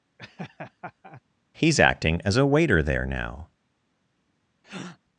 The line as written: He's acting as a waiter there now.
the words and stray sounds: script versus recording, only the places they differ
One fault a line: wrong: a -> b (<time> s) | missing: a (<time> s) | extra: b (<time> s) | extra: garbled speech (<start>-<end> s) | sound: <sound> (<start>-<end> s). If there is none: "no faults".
sound: laugh (0.2-1.2 s)
sound: breath (4.6-5.0 s)